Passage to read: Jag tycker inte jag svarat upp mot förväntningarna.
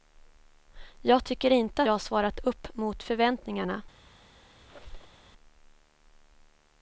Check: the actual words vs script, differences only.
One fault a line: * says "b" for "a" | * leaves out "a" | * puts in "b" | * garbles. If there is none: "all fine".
all fine